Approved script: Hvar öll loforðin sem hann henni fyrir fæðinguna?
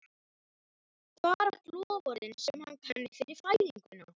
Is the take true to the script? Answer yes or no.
yes